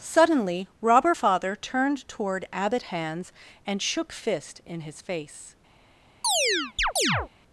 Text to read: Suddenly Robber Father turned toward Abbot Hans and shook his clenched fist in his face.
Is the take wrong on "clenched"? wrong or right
wrong